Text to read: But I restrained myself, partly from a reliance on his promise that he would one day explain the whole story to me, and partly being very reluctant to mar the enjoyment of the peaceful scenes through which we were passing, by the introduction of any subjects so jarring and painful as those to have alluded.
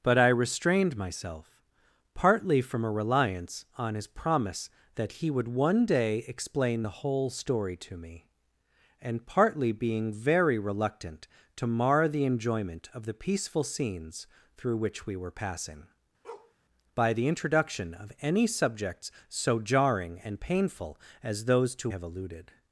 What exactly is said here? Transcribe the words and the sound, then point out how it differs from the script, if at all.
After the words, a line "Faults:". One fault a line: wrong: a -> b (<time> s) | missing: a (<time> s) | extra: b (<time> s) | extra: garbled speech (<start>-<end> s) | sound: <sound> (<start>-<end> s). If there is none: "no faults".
But I restrained myself, partly from a reliance on his promise that he would one day explain the whole story to me, and partly being very reluctant to mar the enjoyment of the peaceful scenes through which we were passing, by the introduction of any subjects so jarring and painful as those to have alluded.
Faults:
sound: bark (16.2-16.5 s)